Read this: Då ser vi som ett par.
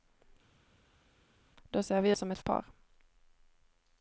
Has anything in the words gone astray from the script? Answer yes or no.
no